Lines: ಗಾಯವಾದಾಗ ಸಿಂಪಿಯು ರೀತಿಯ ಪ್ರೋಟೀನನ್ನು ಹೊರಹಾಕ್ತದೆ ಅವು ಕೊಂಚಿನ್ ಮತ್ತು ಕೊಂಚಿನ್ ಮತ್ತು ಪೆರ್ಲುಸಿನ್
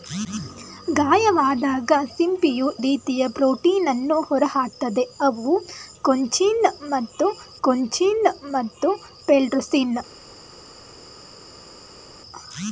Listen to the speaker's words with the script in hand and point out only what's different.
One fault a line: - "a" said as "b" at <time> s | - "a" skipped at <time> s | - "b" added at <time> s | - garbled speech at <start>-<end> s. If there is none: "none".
none